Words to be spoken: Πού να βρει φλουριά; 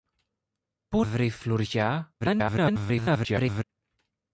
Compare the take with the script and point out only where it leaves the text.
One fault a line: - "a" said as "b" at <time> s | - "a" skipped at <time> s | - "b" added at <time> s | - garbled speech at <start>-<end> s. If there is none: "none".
- "να" skipped at 1.1 s
- garbled speech at 2.2-3.6 s